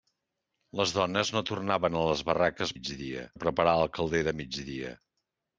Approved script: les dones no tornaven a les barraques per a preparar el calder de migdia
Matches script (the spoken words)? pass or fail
fail